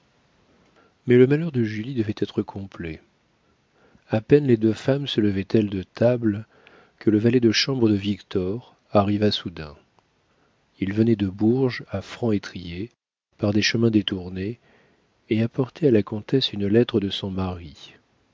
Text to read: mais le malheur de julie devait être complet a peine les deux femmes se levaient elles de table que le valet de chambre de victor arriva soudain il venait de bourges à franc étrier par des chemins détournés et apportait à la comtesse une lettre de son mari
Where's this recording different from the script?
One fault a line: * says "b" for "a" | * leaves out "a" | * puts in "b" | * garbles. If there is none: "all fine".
all fine